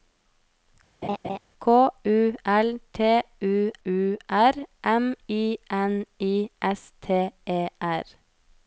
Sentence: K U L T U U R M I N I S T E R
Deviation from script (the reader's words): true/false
false